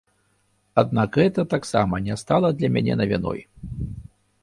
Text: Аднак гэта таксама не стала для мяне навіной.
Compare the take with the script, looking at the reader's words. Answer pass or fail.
pass